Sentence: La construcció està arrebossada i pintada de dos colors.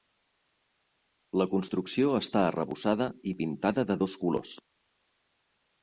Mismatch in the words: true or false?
false